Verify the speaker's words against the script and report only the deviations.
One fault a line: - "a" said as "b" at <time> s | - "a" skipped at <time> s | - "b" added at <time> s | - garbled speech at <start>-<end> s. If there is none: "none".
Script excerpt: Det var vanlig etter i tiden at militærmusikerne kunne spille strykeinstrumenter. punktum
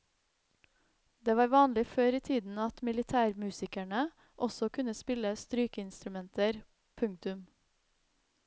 - "etter" said as "før" at 1.9 s
- "også" added at 4.5 s